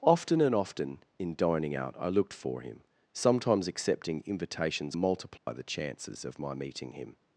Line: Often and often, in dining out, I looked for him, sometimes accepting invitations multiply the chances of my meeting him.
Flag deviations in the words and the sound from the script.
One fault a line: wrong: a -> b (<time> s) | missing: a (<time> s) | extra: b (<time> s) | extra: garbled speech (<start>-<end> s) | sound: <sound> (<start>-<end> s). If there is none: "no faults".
sound: dropout (5.4-5.5 s)